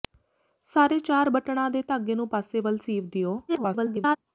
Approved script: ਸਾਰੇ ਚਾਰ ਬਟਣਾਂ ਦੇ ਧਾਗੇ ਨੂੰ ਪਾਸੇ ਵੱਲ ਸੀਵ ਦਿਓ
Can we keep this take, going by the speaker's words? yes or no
no